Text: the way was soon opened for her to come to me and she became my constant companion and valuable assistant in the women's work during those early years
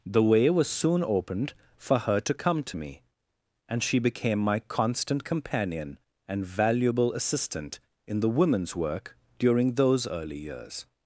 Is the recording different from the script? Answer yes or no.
no